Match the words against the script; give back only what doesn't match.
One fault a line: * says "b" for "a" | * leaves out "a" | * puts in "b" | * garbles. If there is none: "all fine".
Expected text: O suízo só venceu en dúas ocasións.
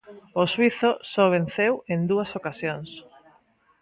all fine